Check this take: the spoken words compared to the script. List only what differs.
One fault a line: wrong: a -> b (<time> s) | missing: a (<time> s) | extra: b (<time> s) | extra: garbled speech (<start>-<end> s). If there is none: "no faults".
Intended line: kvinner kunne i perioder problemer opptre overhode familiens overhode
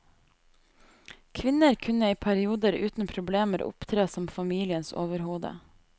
extra: uten (2.7 s)
wrong: overhode -> som (4.1 s)